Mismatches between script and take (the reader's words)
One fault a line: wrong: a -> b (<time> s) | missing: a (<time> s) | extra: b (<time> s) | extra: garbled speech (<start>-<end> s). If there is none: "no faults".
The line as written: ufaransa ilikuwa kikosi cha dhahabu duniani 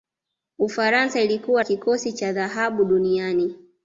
no faults